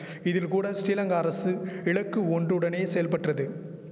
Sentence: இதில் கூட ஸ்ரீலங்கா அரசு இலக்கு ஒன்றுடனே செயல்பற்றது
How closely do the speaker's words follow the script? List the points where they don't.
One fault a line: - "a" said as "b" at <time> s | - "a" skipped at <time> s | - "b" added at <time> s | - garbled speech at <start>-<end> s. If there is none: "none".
none